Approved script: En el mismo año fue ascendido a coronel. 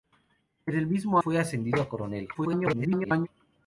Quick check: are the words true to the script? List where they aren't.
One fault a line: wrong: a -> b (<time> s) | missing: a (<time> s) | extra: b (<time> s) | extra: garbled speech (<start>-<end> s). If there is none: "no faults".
missing: año (1.2 s)
extra: garbled speech (2.3-3.3 s)